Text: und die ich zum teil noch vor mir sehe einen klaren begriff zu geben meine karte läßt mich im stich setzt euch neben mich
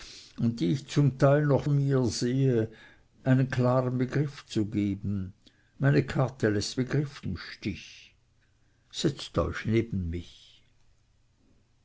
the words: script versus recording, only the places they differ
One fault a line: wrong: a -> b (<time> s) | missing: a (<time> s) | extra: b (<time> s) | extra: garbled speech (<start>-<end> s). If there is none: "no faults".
missing: vor (1.6 s)
wrong: mich -> begriff (6.8 s)